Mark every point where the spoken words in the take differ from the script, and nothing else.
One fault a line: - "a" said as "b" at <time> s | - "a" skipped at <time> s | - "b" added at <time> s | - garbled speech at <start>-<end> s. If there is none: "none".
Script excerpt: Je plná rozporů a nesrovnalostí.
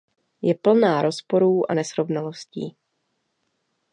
none